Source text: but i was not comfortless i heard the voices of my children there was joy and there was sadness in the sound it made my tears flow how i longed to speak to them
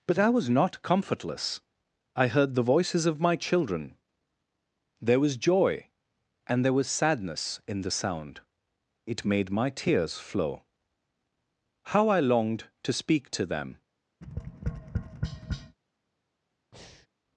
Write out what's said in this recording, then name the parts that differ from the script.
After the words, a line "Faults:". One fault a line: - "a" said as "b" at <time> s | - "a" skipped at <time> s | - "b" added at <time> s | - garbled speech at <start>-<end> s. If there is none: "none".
but i was not comfortless i heard the voices of my children there was joy and there was sadness in the sound it made my tears flow how i longed to speak to them
Faults:
none